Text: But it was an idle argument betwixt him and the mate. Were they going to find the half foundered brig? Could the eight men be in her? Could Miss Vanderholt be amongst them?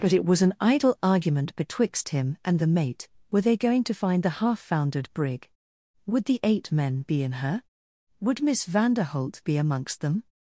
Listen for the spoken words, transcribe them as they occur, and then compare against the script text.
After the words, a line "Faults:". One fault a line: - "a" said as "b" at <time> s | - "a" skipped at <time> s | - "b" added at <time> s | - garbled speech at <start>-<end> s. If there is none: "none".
But it was an idle argument betwixt him and the mate. Were they going to find the half foundered brig? Would the eight men be in her? Would Miss Vanderholt be amongst them?
Faults:
- "Could" said as "Would" at 6.1 s
- "Could" said as "Would" at 8.2 s